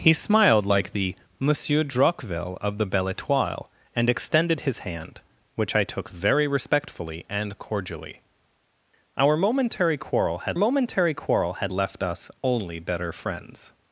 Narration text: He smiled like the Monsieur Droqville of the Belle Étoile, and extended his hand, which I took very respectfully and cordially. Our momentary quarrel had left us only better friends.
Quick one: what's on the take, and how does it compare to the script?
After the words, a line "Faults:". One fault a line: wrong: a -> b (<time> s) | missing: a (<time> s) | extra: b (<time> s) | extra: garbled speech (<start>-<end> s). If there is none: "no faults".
He smiled like the Monsieur Droqville of the Belle Étoile, and extended his hand, which I took very respectfully and cordially. Our momentary quarrel had momentary quarrel had left us only better friends.
Faults:
extra: momentary quarrel had (10.6 s)